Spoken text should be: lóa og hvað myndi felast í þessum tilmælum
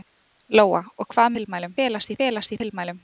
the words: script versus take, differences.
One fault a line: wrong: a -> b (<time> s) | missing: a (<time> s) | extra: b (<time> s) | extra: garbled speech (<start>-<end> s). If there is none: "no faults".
wrong: myndi -> tilmælum (1.4 s)
wrong: þessum -> felast (2.2 s)